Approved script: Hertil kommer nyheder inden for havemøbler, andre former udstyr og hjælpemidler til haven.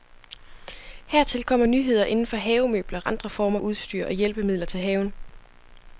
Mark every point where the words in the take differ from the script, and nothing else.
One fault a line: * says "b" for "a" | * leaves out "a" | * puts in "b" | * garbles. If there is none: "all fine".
all fine